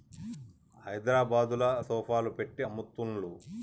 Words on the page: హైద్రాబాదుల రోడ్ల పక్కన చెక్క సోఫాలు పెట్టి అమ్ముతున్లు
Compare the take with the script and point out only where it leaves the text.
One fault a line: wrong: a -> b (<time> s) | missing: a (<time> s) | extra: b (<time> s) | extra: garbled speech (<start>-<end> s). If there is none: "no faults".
missing: రోడ్ల పక్కన చెక్క (1.6 s)